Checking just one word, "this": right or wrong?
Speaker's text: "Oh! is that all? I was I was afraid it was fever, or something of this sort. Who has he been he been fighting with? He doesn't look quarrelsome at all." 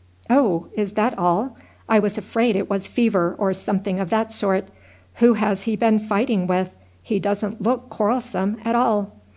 wrong